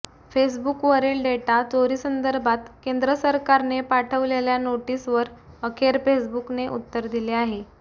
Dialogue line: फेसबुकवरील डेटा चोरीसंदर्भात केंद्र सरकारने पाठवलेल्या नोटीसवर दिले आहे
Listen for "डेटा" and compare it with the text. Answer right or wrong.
right